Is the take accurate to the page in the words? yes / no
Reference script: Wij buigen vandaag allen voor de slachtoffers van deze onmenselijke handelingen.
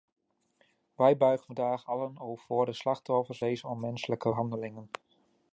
no